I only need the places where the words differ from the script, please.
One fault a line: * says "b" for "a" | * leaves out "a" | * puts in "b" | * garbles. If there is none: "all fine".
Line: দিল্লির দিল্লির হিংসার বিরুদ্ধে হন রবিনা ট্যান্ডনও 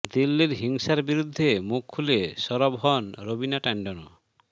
* leaves out "দিল্লির"
* puts in "মুখ খুলে সরব"